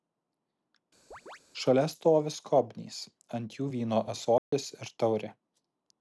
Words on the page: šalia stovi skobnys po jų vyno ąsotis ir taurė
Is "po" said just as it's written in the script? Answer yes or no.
no